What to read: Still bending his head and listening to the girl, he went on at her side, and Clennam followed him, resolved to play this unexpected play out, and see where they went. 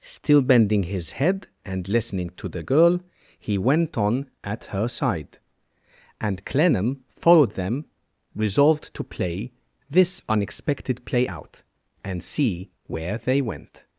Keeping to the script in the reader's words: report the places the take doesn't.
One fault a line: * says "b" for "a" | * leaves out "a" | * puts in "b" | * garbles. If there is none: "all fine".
* says "them" for "him"